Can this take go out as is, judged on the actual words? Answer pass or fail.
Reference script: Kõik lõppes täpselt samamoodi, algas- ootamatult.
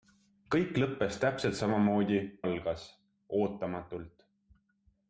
pass